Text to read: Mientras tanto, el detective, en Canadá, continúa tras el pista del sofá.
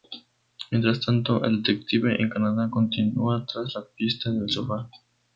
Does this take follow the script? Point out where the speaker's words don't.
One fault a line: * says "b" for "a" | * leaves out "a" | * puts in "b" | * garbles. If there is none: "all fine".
* says "la" for "el"